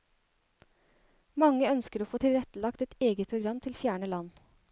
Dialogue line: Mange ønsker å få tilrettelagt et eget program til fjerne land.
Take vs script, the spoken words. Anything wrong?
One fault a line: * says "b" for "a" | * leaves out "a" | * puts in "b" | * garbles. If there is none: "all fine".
all fine